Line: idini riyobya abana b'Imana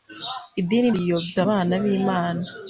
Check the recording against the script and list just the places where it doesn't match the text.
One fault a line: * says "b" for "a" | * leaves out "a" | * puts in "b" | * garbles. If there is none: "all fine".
all fine